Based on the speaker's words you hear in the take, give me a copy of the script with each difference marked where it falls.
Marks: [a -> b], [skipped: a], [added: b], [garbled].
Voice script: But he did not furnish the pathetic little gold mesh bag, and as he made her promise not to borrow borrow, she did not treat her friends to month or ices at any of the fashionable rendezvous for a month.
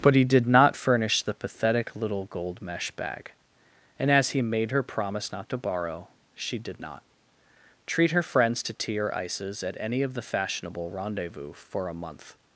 But he did not furnish the pathetic little gold mesh bag, and as he made her promise not to borrow [skipped: borrow,] she did not treat her friends to [month -> tea] or ices at any of the fashionable rendezvous for a month.